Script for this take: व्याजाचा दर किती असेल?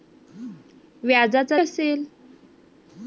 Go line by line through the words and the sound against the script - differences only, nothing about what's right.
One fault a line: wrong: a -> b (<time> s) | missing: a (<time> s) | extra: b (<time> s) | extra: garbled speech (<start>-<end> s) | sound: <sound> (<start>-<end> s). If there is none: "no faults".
missing: दर किती (1.6 s)